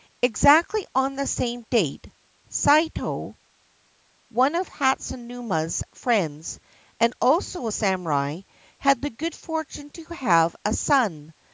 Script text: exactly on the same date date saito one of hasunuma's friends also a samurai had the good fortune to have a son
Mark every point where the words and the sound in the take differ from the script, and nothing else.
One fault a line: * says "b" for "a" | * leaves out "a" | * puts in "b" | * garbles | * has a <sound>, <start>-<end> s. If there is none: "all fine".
* leaves out "date"
* puts in "and"